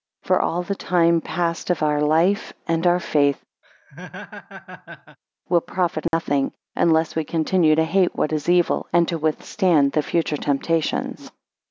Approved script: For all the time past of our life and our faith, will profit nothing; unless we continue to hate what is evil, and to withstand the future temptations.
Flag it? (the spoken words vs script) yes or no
no